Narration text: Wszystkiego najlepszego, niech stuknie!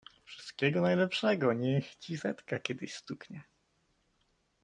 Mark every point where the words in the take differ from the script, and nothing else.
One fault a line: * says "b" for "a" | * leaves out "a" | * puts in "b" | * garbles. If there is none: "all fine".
* puts in "ci setka kiedyś"